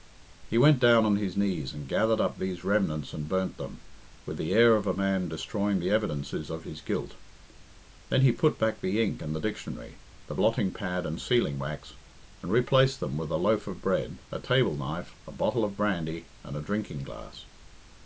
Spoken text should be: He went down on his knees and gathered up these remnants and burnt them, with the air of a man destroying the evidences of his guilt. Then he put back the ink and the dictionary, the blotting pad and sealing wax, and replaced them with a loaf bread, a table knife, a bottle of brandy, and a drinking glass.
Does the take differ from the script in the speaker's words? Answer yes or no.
yes